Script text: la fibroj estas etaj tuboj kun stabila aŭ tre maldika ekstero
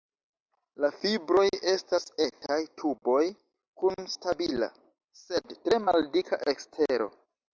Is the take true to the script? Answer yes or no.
no